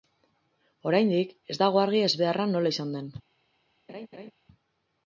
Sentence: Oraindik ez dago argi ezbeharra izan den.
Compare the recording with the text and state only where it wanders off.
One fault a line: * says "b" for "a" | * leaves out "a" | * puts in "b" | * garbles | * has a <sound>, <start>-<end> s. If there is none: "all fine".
* puts in "nola"
* has a laugh, 3.9-4.3 s